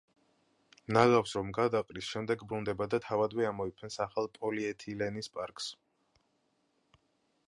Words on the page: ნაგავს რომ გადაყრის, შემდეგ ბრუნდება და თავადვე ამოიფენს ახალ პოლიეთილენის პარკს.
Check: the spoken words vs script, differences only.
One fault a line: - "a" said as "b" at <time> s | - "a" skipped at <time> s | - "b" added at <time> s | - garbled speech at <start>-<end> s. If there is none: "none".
none